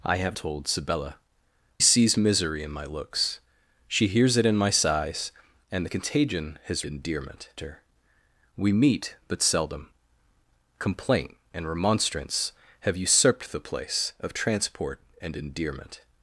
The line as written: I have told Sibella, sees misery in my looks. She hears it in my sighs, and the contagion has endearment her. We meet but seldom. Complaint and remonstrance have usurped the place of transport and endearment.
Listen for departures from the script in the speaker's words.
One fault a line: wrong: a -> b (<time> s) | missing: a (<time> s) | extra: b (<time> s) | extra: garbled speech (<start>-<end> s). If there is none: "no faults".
no faults